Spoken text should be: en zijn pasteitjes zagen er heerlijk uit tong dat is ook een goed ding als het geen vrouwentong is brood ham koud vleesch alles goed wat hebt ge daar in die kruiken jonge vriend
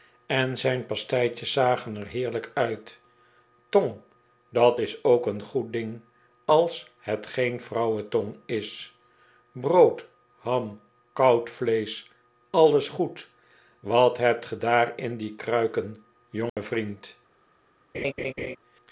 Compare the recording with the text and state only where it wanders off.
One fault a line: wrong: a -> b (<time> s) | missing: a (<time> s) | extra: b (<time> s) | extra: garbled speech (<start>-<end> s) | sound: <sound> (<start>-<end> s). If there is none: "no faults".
sound: dropout (16.5-16.6 s)
sound: laugh (17.9-18.6 s)